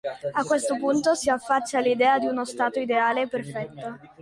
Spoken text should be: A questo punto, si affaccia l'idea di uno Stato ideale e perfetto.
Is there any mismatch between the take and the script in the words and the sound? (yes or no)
no